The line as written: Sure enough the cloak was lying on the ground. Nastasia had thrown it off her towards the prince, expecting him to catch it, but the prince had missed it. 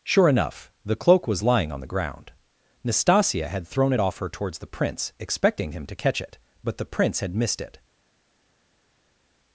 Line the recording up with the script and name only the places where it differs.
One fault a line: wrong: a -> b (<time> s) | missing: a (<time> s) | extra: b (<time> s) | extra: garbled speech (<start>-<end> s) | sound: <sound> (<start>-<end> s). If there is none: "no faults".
no faults